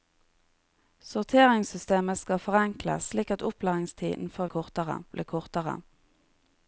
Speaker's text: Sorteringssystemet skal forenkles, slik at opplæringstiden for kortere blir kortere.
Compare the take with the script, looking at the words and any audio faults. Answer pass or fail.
pass